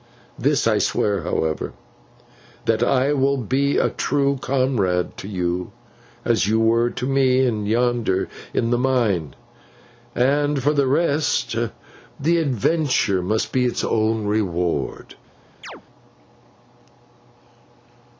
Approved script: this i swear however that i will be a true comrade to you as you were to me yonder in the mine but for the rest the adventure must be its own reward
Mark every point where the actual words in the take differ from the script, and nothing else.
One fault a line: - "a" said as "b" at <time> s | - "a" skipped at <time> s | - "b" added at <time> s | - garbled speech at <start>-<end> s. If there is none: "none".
- "but" said as "and" at 10.1 s